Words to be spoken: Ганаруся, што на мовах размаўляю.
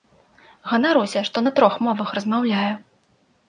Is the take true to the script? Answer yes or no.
no